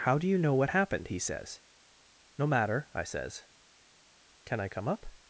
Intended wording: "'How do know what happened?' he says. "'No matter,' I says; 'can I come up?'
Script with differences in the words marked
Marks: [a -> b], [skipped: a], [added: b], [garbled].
"'How do [added: you] know what happened?' he says. "'No matter,' I says; 'can I come up?'